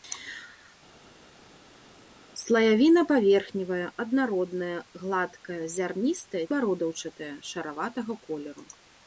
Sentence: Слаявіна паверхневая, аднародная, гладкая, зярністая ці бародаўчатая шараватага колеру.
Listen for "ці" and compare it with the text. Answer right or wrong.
wrong